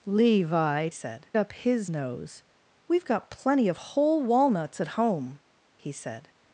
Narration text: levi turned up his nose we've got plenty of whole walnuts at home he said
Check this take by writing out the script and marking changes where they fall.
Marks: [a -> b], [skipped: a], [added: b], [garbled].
levi [turned -> said] up his nose we've got plenty of whole walnuts at home he said